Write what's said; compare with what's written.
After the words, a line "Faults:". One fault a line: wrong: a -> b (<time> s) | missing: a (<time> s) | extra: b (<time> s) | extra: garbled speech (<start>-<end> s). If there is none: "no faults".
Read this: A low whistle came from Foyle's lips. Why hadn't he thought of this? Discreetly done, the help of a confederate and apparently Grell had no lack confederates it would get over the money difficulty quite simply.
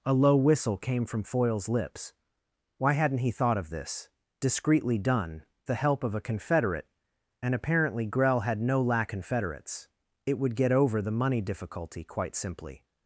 A low whistle came from Foyle's lips. Why hadn't he thought of this? Discreetly done, the help of a confederate and apparently Grell had no lack confederates it would get over the money difficulty quite simply.
Faults:
no faults